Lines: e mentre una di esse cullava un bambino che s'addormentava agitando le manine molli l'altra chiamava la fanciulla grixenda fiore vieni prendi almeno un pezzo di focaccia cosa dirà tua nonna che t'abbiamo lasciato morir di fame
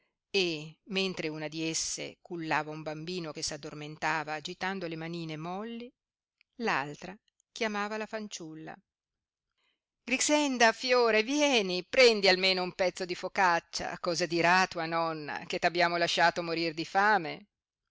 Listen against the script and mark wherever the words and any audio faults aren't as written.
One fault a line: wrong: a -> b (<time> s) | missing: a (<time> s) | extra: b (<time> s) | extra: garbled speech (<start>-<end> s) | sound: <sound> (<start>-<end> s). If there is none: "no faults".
no faults